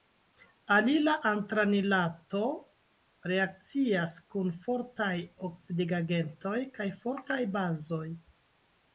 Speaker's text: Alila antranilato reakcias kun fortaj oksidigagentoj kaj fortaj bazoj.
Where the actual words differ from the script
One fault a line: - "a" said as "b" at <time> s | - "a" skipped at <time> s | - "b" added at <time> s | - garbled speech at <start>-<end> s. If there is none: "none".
none